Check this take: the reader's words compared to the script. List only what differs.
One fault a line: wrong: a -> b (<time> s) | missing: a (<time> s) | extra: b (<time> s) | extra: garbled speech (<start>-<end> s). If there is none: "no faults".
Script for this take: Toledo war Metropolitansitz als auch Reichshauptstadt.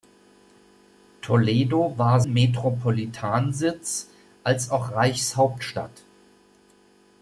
no faults